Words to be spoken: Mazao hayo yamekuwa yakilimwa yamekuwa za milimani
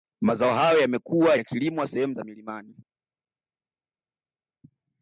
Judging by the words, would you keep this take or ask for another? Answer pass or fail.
fail